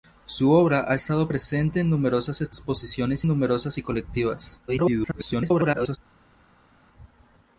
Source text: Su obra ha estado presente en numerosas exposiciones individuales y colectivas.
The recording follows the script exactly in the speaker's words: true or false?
false